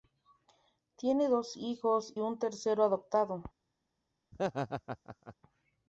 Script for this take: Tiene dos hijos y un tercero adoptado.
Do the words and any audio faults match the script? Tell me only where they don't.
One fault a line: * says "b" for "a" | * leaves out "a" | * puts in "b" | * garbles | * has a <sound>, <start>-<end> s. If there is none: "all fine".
* leaves out "y"
* has a laugh, 4.3-5.3 s